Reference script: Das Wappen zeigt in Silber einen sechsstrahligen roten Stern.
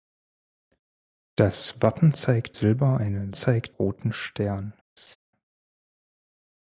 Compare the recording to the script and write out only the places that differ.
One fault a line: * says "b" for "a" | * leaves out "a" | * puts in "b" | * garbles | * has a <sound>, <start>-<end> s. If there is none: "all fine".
* leaves out "in"
* says "zeigt" for "sechsstrahligen"
* has a laugh, 5.0-5.2 s